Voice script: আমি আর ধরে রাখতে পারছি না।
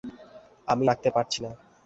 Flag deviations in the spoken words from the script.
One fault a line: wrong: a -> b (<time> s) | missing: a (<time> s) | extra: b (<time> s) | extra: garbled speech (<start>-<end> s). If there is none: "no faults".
missing: আর ধরে (0.9 s)